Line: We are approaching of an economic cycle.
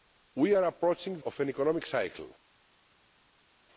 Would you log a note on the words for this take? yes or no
no